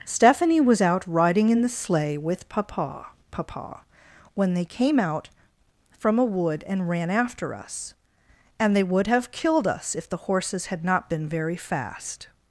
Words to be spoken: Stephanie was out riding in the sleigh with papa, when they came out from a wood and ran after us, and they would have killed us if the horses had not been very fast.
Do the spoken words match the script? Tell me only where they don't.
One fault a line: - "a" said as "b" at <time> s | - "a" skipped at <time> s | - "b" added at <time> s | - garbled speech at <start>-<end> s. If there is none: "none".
- "papa" added at 3.3 s